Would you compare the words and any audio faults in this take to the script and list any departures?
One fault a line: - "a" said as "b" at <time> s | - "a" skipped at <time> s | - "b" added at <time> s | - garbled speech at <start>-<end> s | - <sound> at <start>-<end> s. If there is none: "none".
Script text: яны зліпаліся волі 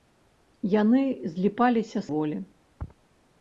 none